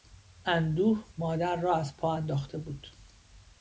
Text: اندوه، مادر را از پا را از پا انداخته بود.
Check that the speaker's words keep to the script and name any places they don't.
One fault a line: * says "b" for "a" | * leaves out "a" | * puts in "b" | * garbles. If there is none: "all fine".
* leaves out "را از پا"